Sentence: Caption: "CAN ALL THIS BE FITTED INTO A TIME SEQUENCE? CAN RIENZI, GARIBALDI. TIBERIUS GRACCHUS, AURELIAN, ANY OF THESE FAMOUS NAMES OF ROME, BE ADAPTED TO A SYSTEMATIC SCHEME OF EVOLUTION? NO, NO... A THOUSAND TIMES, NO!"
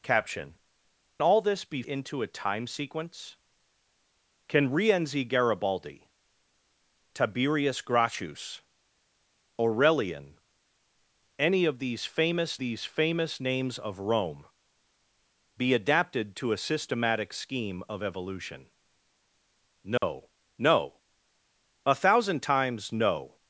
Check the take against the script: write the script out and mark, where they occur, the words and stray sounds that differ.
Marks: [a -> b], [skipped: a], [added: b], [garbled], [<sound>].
Caption: [skipped: "CAN] ALL THIS BE [skipped: FITTED] INTO A TIME SEQUENCE? CAN RIENZI, GARIBALDI. TIBERIUS GRACCHUS, AURELIAN, ANY OF THESE FAMOUS [added: THESE FAMOUS] NAMES OF ROME, BE ADAPTED TO A SYSTEMATIC SCHEME OF EVOLUTION? NO, [dropout] NO... A THOUSAND TIMES, NO!"